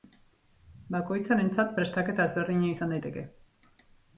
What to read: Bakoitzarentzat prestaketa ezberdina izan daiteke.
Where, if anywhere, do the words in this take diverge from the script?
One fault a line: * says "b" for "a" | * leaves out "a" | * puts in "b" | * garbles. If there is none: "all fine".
all fine